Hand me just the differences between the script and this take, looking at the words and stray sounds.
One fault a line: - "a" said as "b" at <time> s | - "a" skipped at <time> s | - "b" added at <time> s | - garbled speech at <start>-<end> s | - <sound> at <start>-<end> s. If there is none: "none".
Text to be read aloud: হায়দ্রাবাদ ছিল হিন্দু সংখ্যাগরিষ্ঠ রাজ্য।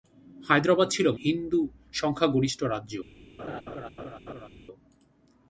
- laugh at 3.4-4.5 s